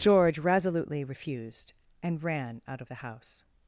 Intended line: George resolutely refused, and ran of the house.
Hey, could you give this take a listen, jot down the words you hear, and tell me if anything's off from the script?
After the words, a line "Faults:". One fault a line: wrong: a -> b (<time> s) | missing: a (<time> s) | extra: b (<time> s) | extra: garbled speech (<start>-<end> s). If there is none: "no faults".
George resolutely refused, and ran out of the house.
Faults:
extra: out (2.7 s)